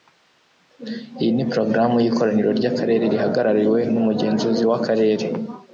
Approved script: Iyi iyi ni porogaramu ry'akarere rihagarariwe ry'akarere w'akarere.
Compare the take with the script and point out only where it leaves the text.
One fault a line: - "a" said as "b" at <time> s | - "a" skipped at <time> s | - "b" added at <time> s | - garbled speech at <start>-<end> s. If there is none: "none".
- "iyi" skipped at 1.3 s
- "y'ikoraniro" added at 2.0 s
- "ry'akarere" said as "n'umugenzuzi" at 3.9 s